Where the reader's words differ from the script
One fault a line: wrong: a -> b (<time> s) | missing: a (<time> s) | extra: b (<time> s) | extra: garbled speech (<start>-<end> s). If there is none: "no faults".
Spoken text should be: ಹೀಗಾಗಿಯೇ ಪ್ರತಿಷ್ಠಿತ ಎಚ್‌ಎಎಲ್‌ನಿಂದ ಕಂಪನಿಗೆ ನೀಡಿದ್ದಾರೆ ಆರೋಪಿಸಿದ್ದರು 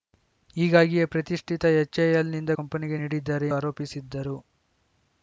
no faults